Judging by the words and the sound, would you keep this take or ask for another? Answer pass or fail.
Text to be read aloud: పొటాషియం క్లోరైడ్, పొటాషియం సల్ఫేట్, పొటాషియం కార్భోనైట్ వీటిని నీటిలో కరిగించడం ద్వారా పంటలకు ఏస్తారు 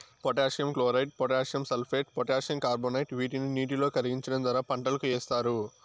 pass